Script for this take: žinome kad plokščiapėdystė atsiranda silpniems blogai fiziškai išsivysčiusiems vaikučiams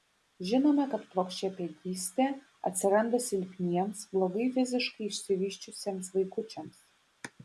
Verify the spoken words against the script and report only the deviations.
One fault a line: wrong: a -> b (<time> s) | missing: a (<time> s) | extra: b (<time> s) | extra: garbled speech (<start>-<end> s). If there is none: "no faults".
no faults